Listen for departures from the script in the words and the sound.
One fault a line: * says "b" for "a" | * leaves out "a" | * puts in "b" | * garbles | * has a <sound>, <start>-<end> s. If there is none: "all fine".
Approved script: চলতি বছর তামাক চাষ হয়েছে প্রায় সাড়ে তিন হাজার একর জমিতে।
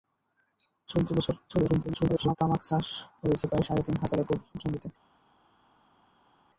* garbles